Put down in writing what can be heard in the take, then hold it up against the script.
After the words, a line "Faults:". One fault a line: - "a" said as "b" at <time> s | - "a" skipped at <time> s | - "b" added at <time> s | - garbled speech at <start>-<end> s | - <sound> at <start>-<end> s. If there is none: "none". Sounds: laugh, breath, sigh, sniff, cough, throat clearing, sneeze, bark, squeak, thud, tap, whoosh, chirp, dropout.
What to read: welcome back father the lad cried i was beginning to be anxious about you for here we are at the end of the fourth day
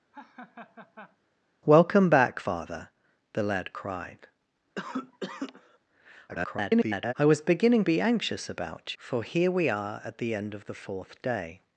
welcome back father the lad cried [garbled] i was beginning be anxious about for here we are at the end of the fourth day
Faults:
- laugh at 0.1-1.2 s
- cough at 4.8-5.8 s
- garbled speech at 6.3-7.1 s
- "to" skipped at 7.8 s
- "you" skipped at 9.0 s